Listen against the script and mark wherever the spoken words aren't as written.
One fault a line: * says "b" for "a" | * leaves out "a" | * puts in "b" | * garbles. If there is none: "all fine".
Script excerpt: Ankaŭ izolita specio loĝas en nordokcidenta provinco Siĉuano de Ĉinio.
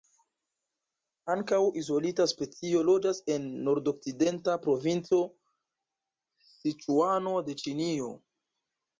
all fine